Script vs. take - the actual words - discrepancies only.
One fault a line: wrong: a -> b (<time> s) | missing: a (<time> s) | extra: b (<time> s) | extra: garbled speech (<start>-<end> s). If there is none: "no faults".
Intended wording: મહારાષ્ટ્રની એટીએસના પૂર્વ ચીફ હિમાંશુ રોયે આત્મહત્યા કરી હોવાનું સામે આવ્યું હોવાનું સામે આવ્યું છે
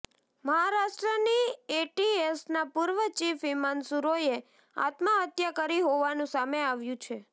missing: હોવાનું સામે આવ્યું (7.0 s)